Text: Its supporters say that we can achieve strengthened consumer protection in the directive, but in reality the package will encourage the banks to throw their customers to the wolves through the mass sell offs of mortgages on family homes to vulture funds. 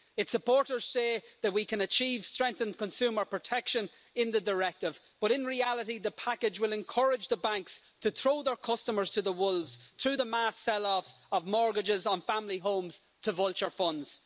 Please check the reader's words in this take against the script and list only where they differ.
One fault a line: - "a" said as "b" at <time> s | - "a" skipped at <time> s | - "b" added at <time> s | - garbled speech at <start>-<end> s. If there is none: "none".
none